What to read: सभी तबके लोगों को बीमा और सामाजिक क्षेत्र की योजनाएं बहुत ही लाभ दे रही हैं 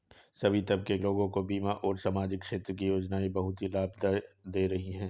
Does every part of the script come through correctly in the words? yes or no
yes